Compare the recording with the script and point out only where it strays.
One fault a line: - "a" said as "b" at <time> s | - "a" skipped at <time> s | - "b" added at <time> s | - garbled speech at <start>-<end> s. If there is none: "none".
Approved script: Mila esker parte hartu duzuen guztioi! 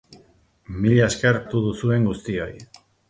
- "parte" skipped at 1.4 s